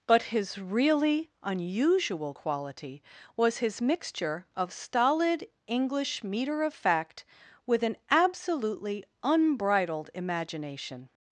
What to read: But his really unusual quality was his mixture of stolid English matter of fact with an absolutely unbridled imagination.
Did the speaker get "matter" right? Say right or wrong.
wrong